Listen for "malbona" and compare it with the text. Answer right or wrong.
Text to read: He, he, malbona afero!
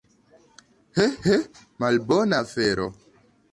right